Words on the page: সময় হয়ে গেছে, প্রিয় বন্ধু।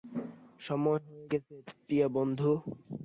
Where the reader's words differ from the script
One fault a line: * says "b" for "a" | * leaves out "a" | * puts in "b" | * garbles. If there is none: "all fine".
all fine